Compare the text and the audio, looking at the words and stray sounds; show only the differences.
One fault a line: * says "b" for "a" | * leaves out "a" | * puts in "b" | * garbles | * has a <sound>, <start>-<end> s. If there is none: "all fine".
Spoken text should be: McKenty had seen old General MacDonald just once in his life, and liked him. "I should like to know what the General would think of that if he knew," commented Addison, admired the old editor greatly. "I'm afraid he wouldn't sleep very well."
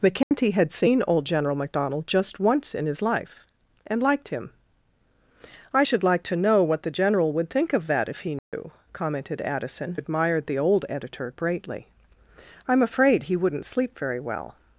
* has a dropout, 0.2-0.3 s
* has a dropout, 8.4-8.5 s